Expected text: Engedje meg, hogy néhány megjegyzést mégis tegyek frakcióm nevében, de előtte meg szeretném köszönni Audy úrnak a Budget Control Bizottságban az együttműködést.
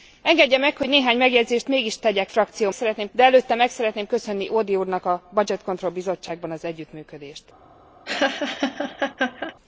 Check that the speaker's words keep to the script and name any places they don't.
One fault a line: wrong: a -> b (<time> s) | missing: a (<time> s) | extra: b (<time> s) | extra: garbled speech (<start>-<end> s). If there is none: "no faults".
wrong: nevében -> szeretném (2.7 s)